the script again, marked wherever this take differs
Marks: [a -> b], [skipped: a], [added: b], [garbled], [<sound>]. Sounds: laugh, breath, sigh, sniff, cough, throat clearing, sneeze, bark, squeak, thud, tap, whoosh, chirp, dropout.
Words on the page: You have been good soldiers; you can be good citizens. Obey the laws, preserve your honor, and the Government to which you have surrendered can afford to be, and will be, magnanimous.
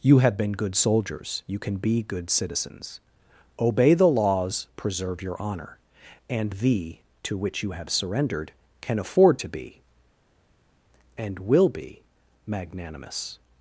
You have been good soldiers; you can be good citizens. Obey the laws, preserve your honor, and the [skipped: Government] to which you have surrendered can afford to be, and will be, magnanimous.